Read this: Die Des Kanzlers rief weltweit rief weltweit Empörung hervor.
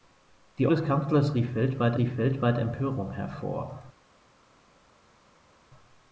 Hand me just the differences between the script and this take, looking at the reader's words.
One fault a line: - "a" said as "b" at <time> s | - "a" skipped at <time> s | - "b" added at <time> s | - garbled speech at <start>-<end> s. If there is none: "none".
none